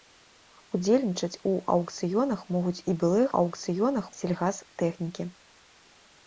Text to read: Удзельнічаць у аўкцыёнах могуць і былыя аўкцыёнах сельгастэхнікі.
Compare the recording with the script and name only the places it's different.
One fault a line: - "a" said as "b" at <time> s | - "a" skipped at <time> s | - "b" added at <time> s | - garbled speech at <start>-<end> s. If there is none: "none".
none